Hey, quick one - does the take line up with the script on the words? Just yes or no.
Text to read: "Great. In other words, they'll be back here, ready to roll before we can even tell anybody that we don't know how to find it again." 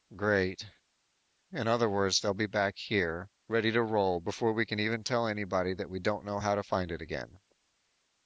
yes